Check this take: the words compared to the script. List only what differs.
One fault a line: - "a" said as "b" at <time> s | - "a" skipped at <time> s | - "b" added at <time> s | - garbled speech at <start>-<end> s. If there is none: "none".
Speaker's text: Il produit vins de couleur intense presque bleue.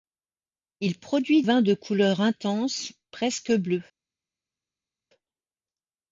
none